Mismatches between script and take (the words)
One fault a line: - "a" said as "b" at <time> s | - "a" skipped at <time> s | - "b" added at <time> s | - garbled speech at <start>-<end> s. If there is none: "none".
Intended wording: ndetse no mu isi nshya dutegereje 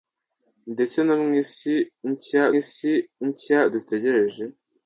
- "isi nshya" added at 2.6 s